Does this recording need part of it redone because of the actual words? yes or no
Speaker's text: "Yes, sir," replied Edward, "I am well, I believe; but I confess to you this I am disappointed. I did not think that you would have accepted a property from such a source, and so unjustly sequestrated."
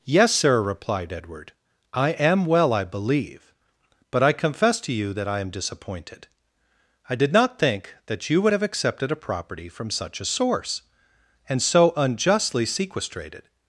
yes